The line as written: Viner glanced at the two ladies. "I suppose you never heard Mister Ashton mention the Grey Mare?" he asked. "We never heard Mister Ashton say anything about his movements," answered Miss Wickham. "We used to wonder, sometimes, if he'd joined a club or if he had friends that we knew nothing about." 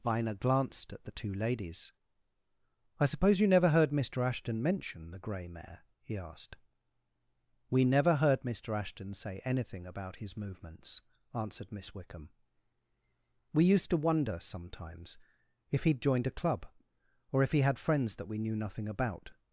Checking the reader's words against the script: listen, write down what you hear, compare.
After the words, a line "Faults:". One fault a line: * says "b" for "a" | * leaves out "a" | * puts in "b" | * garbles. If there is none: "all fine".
Viner glanced at the two ladies. "I suppose you never heard Mister Ashton mention the Grey Mare?" he asked. "We never heard Mister Ashton say anything about his movements," answered Miss Wickham. "We used to wonder, sometimes, if he'd joined a club or if he had friends that we knew nothing about."
Faults:
all fine